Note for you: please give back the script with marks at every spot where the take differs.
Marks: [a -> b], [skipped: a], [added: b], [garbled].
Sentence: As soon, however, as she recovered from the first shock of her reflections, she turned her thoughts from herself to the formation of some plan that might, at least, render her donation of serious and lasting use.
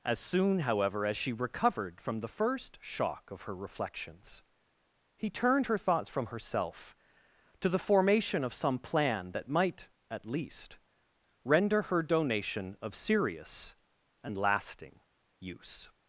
As soon, however, as she recovered from the first shock of her reflections, [she -> he] turned her thoughts from herself to the formation of some plan that might, at least, render her donation of serious and lasting use.